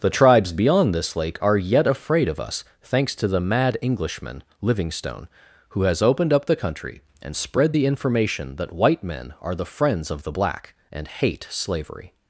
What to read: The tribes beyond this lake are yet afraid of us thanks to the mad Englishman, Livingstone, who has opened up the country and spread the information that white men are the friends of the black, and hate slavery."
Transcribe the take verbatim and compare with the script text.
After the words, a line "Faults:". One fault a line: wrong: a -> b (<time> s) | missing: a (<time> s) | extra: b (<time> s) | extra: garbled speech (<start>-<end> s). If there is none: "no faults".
The tribes beyond this lake are yet afraid of us thanks to the mad Englishman, Livingstone, who has opened up the country and spread the information that white men are the friends of the black, and hate slavery."
Faults:
no faults